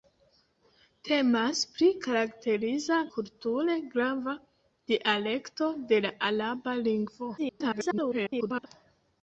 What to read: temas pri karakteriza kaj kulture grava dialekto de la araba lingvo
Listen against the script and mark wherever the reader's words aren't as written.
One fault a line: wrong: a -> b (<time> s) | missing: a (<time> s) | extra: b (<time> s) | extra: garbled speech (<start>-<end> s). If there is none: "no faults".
missing: kaj (3.0 s)
extra: garbled speech (7.4-8.7 s)